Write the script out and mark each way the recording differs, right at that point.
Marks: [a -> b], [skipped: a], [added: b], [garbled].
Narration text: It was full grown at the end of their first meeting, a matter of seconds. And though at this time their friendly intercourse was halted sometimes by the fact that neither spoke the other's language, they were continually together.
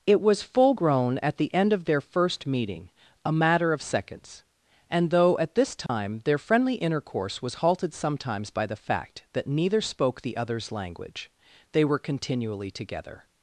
It was full grown at the end of their first meeting, a matter of seconds. And though at this time their friendly intercourse was halted sometimes by the fact that neither spoke the other's language, they were continually together.